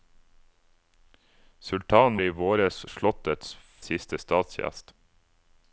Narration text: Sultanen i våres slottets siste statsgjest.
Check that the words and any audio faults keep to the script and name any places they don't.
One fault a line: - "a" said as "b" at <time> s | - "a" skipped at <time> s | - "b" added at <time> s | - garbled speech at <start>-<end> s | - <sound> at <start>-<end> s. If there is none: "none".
none